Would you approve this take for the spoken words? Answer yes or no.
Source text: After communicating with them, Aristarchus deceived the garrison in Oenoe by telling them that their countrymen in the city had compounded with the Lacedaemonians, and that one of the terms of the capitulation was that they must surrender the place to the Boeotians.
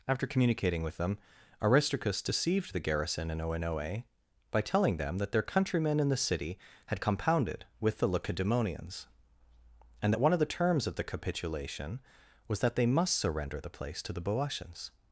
yes